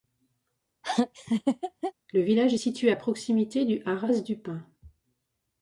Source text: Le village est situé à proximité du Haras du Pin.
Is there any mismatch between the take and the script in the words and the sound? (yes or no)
yes